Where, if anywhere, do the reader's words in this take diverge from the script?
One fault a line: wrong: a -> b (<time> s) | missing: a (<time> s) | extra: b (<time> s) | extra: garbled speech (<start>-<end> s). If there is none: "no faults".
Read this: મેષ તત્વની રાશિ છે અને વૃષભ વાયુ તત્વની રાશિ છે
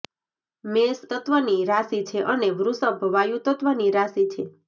no faults